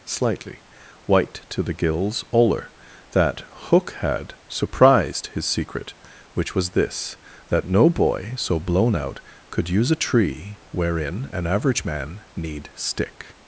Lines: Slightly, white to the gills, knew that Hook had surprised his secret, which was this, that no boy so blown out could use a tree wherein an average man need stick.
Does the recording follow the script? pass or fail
fail